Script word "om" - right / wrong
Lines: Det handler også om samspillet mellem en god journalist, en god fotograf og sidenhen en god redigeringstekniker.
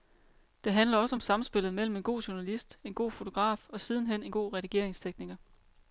right